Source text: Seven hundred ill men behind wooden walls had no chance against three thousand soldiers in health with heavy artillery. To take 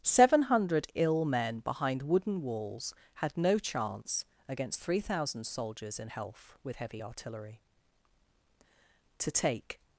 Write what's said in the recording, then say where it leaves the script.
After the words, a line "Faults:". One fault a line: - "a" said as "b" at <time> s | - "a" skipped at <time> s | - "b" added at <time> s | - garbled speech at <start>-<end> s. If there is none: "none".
Seven hundred ill men behind wooden walls had no chance against three thousand soldiers in health with heavy artillery. To take
Faults:
none